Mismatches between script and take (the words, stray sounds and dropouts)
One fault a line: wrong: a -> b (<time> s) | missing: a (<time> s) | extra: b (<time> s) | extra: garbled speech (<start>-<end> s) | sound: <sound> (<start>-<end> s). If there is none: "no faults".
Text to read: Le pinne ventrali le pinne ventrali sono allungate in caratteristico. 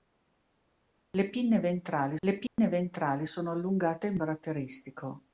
sound: dropout (2.5-2.6 s)